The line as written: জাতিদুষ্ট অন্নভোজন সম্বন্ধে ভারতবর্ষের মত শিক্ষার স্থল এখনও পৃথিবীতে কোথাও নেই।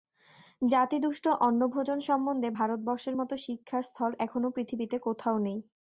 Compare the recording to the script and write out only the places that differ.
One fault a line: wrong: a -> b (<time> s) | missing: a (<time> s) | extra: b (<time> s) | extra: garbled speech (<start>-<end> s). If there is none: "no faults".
no faults